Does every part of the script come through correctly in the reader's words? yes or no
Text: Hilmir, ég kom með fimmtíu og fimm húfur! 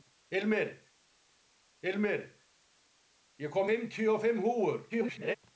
no